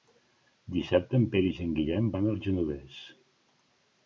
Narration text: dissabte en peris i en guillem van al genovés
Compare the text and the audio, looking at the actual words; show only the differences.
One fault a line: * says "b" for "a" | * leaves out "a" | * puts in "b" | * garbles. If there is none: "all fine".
all fine